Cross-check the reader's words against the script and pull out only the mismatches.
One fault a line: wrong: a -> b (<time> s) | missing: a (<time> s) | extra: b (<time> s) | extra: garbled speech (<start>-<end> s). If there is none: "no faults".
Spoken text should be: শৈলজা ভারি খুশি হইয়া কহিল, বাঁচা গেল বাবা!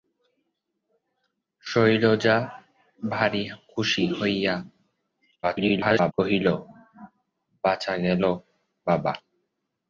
extra: garbled speech (5.4-6.1 s)